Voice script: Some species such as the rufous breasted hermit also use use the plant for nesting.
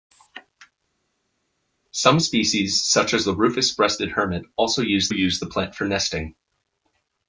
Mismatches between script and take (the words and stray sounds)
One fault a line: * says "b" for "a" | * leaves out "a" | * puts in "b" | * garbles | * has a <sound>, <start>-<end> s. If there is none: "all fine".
all fine